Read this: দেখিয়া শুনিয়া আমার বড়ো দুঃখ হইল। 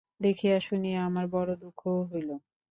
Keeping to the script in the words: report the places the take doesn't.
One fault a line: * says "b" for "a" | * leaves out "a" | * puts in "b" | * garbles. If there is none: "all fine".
all fine